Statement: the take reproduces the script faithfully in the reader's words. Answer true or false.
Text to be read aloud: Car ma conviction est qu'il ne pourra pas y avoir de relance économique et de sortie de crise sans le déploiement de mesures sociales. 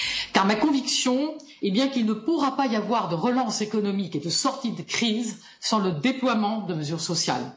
false